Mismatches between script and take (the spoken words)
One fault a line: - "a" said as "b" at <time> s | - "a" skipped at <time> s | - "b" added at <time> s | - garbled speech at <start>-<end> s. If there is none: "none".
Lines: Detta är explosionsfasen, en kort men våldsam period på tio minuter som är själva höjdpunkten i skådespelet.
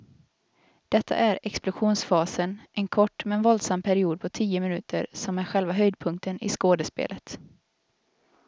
none